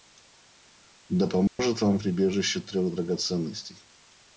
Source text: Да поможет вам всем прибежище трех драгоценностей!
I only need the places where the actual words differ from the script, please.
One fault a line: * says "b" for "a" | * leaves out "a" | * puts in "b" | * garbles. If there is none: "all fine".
* leaves out "всем"